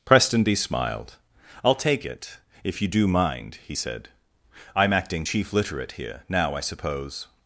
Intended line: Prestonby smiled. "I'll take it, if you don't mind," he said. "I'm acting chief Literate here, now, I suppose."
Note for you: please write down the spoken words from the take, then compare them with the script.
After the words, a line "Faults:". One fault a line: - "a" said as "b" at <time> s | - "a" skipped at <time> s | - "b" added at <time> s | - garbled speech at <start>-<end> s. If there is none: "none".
Prestonby smiled. "I'll take it, if you do mind," he said. "I'm acting chief Literate here, now, I suppose."
Faults:
- "don't" said as "do" at 2.9 s